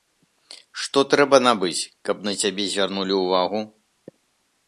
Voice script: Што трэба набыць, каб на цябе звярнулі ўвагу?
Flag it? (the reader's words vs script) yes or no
no